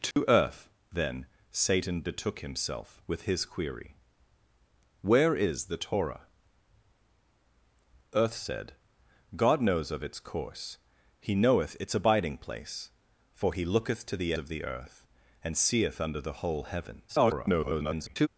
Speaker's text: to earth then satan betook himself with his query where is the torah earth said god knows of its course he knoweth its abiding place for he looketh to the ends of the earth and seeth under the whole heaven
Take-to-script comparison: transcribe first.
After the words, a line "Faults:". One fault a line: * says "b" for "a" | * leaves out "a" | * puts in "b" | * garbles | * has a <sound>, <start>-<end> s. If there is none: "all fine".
to earth then satan betook himself with his query where is the torah earth said god knows of its course he knoweth its abiding place for he looketh to the of the earth and seeth under the whole heaven [garbled]
Faults:
* has a dropout, 0.1-0.2 s
* leaves out "ends"
* garbles